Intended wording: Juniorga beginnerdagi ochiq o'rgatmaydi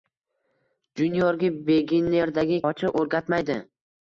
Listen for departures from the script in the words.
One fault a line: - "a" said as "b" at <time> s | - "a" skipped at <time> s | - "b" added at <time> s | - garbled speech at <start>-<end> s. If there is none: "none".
none